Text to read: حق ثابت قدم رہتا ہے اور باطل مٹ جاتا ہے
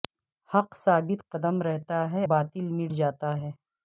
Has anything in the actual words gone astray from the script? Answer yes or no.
yes